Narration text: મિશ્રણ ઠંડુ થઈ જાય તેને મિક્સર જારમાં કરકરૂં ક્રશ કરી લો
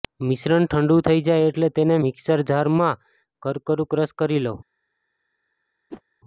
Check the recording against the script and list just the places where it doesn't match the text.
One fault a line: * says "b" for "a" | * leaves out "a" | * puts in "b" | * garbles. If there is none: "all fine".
* puts in "એટલે"